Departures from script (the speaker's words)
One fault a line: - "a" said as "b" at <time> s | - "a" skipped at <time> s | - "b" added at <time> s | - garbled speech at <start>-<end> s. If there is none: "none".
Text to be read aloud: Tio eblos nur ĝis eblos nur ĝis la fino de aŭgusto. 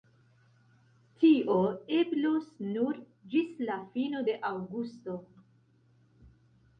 - "eblos nur ĝis" skipped at 3.5 s